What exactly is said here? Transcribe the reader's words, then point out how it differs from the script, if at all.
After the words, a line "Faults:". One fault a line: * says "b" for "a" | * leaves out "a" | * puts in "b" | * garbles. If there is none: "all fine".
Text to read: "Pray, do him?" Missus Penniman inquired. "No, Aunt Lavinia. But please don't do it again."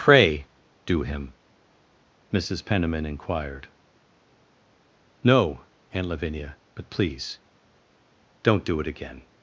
"Pray, do him?" Missus Penniman inquired. "No, Aunt Lavinia. But please don't do it again."
Faults:
all fine